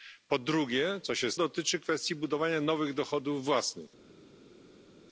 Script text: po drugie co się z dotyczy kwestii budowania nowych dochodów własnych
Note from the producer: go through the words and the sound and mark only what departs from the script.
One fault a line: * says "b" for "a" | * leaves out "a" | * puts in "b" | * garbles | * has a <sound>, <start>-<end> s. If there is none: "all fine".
all fine